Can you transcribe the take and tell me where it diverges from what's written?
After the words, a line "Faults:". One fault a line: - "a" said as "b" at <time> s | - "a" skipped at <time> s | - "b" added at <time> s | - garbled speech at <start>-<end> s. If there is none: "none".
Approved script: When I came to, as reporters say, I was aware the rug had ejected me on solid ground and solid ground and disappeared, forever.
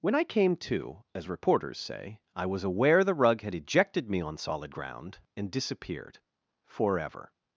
When I came to, as reporters say, I was aware the rug had ejected me on solid ground and disappeared, forever.
Faults:
- "solid ground and" skipped at 5.5 s